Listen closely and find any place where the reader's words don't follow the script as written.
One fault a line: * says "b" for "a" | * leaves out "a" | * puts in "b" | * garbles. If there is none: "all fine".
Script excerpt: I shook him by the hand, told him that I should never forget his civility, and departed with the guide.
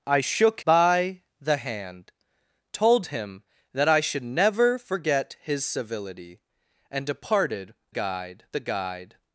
* leaves out "him"
* says "guide" for "with"